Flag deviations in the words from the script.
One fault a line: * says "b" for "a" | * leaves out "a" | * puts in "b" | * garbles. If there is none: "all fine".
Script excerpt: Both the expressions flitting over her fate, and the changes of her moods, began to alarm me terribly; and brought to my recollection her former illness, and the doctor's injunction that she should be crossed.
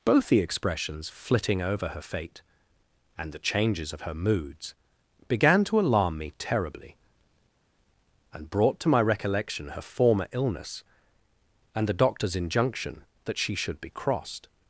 all fine